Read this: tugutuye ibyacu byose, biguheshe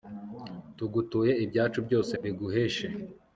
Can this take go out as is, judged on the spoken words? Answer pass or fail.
pass